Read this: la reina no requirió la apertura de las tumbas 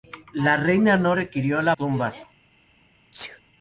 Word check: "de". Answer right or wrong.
wrong